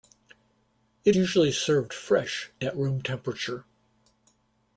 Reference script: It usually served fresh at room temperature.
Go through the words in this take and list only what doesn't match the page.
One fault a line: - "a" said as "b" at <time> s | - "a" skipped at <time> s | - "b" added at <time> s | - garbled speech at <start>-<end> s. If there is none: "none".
none